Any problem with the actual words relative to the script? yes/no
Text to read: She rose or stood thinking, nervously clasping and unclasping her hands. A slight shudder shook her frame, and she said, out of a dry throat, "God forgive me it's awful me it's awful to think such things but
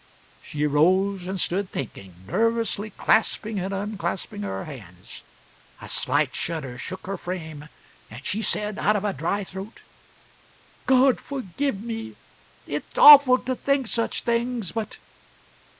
yes